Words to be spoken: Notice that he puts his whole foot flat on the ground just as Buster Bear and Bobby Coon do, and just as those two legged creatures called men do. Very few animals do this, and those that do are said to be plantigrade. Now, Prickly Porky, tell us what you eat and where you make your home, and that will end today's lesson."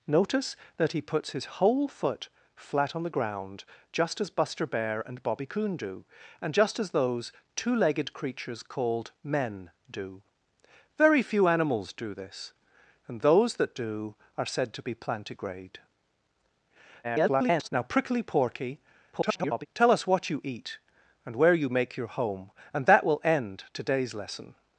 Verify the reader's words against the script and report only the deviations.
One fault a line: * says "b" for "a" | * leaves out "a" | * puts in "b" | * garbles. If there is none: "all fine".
* garbles
* garbles